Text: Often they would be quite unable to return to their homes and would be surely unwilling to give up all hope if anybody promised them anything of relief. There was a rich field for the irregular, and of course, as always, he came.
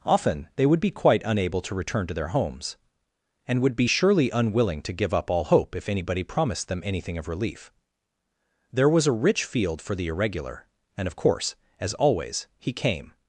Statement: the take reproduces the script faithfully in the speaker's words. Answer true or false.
true